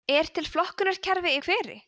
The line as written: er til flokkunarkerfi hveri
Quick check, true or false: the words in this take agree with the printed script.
true